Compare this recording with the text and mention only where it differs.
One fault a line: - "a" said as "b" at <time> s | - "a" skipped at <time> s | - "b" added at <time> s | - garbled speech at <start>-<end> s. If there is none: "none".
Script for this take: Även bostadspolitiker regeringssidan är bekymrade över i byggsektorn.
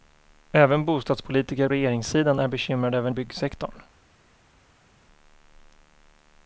none